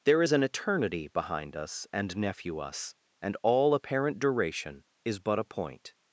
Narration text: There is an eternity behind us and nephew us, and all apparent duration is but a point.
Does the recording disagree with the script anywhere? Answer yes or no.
no